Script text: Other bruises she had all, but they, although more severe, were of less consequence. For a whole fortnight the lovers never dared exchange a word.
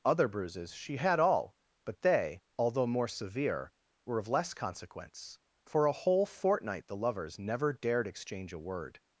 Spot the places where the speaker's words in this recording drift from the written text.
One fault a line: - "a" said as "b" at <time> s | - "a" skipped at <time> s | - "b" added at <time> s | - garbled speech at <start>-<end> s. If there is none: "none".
none